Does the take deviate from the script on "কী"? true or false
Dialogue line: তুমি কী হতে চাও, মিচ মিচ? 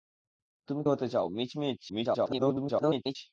true